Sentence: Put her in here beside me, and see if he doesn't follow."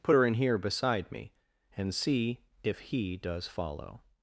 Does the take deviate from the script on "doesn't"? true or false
true